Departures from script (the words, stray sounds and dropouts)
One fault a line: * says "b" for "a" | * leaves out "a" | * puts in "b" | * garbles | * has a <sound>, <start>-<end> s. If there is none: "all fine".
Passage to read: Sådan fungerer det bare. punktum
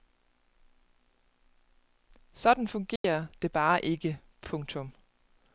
* has a dropout, 3.0-3.0 s
* puts in "ikke"